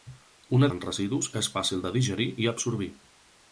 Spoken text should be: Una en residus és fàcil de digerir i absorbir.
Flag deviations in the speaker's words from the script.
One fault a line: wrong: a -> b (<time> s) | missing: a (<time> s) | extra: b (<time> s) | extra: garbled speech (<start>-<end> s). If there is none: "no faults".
no faults